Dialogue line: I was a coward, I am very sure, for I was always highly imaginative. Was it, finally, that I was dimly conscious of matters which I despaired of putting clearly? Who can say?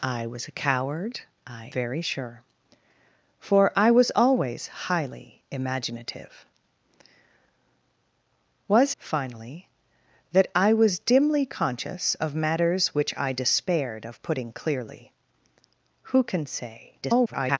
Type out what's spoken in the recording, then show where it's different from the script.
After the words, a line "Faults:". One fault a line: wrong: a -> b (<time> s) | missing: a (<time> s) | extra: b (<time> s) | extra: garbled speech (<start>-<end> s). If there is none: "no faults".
I was a coward, I very sure, for I was always highly imaginative. Was finally, that I was dimly conscious of matters which I despaired of putting clearly? Who can say? [garbled]
Faults:
missing: am (1.7 s)
missing: it (8.9 s)
extra: garbled speech (17.0-17.6 s)